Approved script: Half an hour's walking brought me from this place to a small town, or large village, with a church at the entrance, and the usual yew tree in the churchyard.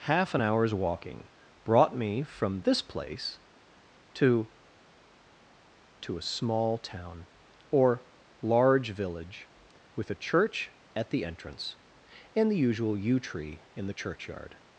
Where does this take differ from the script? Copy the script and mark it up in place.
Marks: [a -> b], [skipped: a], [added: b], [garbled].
Half an hour's walking brought me from this place to [added: to] a small town, or large village, with a church at the entrance, and the usual yew tree in the churchyard.